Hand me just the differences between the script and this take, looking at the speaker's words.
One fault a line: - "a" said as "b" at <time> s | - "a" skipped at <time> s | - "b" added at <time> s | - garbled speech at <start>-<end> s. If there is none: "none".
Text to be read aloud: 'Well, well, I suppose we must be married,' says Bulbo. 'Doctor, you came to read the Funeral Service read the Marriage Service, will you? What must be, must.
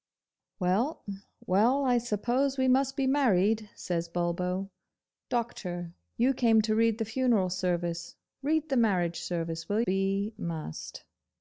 - "you What must" skipped at 9.8 s